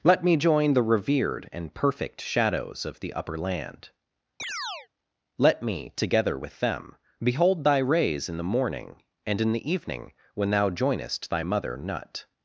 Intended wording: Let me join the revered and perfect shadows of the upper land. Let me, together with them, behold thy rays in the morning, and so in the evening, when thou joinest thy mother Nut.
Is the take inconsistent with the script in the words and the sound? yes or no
yes